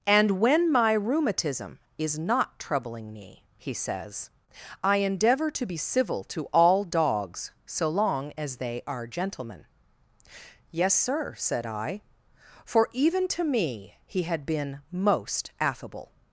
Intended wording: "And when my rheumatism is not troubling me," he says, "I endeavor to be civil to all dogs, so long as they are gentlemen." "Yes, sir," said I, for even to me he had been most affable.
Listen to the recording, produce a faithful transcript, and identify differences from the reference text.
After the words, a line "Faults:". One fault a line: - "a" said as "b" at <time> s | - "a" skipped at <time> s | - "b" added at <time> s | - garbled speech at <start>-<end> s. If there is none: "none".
"And when my rheumatism is not troubling me," he says, "I endeavor to be civil to all dogs, so long as they are gentlemen." "Yes, sir," said I, for even to me he had been most affable.
Faults:
none